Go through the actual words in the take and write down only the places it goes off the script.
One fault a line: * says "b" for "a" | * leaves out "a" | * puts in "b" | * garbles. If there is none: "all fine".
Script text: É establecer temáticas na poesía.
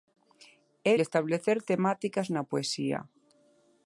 all fine